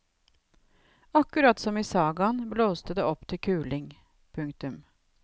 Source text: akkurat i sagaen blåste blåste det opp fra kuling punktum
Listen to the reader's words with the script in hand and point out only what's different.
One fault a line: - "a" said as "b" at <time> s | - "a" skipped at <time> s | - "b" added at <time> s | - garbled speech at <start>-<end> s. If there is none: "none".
- "som" added at 1.6 s
- "blåste" skipped at 2.9 s
- "fra" said as "til" at 3.3 s